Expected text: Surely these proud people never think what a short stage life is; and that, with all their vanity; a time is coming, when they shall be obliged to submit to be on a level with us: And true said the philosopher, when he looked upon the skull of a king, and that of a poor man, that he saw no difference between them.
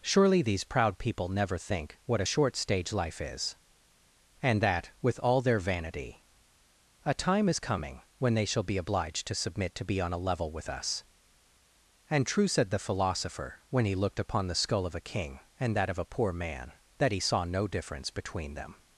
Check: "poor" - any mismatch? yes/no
no